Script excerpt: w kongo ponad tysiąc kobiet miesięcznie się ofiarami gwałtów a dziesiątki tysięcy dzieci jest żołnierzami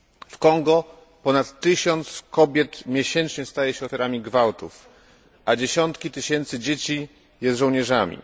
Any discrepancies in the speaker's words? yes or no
yes